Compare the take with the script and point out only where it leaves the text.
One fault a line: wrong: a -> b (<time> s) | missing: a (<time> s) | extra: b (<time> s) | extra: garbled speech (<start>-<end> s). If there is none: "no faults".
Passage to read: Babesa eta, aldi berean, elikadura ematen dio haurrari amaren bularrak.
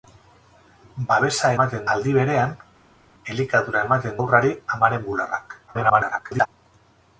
wrong: eta -> ematen (1.6 s)
missing: dio (4.2 s)
extra: garbled speech (5.7-6.5 s)